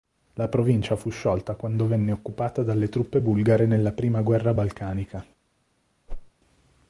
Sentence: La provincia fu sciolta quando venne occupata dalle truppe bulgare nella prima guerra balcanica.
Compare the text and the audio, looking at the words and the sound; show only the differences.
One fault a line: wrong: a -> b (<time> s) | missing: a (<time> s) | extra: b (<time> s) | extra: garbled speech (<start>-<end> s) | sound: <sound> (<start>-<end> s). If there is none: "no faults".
sound: whoosh (6.1-6.3 s)